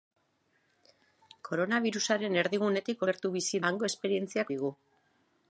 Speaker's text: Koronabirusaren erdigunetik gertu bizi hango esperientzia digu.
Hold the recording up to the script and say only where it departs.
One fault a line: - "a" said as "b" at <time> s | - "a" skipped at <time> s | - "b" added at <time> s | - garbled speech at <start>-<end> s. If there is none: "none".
none